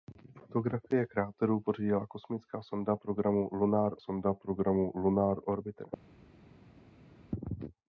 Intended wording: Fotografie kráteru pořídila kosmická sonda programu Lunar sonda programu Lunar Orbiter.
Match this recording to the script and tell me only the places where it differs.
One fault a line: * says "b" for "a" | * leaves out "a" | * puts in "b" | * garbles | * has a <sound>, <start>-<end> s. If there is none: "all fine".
all fine